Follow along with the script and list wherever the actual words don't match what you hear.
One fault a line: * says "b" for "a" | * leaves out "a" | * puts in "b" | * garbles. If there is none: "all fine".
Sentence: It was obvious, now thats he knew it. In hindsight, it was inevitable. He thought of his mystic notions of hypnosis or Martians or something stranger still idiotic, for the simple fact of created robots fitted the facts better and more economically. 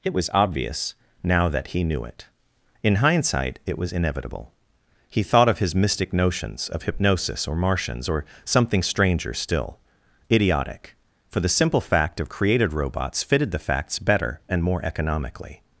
* says "that" for "thats"